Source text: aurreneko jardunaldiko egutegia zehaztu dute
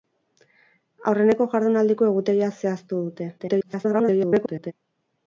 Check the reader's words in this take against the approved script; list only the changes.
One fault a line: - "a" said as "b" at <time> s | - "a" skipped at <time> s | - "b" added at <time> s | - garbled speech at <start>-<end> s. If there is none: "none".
- garbled speech at 3.4-4.7 s